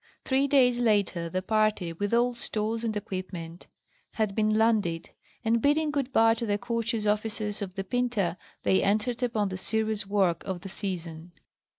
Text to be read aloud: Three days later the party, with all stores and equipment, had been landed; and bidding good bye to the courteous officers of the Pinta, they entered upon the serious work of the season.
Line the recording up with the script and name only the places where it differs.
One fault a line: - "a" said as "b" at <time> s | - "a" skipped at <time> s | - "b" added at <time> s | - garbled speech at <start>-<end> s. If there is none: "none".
none